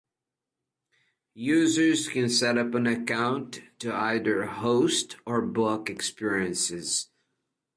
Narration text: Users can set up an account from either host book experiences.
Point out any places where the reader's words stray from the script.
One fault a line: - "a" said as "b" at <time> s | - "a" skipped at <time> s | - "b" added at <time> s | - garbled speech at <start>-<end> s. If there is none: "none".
- "from" said as "to" at 3.8 s
- "or" added at 5.3 s